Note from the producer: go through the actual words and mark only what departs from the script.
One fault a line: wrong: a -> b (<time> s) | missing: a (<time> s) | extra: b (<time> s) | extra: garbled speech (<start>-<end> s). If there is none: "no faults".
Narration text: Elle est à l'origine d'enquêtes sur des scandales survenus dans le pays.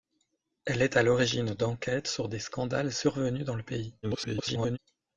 extra: garbled speech (4.0-4.8 s)